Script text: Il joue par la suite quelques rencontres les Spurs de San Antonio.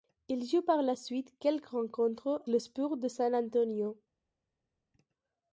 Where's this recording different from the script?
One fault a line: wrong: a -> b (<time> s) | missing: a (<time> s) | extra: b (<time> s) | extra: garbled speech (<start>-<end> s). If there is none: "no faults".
no faults